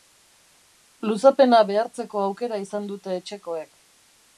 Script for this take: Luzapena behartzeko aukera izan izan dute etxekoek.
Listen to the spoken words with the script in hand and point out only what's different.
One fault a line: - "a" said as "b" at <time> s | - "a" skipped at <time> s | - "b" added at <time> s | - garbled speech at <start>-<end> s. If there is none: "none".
- "izan" skipped at 2.9 s